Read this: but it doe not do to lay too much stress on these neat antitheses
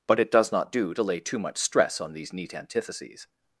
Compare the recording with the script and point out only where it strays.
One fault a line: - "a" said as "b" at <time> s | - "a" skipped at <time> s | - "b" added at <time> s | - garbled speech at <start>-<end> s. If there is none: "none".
- "doe" said as "does" at 0.3 s